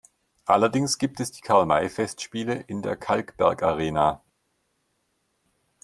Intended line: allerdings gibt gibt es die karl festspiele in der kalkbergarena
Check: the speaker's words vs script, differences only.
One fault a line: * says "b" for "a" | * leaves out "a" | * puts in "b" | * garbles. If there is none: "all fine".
* leaves out "gibt"
* puts in "may"